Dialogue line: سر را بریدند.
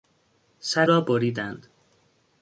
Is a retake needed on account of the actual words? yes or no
no